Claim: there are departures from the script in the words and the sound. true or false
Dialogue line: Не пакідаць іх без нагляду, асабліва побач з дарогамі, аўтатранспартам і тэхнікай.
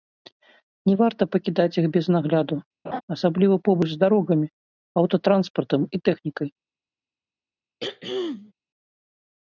true